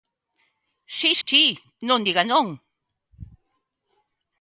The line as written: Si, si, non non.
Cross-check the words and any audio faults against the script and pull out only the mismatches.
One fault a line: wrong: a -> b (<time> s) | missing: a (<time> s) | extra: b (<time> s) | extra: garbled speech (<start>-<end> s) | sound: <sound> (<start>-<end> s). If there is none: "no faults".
sound: dropout (1.2-1.3 s)
extra: diga (2.0 s)